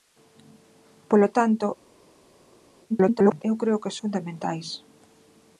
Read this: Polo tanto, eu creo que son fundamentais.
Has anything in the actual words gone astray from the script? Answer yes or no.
yes